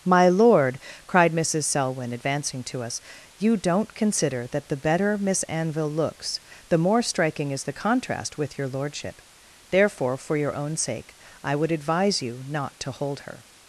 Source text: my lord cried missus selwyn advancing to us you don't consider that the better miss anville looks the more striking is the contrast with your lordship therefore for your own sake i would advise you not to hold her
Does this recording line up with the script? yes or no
yes